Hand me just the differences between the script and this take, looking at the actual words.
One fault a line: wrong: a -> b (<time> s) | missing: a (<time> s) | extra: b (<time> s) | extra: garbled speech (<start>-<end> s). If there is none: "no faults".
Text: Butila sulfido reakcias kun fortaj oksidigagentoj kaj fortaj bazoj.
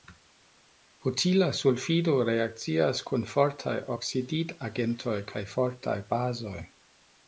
no faults